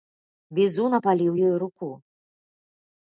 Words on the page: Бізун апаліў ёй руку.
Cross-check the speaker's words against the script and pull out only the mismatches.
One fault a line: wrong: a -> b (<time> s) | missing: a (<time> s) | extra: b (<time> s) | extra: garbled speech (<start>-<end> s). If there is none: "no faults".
no faults